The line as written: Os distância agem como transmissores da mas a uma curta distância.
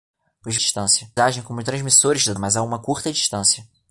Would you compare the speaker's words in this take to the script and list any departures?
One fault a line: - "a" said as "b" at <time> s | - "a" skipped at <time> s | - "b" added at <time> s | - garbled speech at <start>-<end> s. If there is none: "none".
none